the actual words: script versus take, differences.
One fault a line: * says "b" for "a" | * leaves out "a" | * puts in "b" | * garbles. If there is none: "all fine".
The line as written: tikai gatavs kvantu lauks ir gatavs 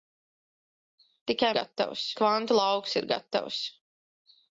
all fine